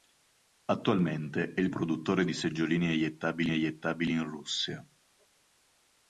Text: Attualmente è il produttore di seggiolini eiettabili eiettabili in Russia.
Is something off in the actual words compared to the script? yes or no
no